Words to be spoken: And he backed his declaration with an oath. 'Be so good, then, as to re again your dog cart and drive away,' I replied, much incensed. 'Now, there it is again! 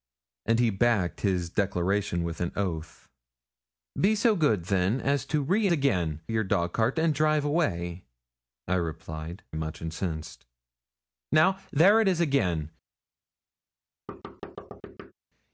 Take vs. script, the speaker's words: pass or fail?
pass